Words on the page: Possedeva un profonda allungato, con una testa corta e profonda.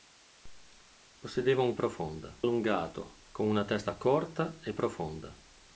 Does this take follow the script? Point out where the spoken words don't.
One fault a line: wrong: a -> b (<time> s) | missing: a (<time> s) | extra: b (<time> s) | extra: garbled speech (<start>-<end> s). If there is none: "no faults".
no faults